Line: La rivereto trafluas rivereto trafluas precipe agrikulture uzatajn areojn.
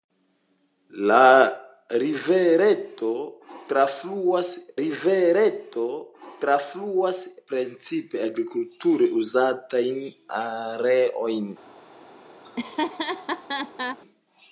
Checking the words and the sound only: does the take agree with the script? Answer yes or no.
no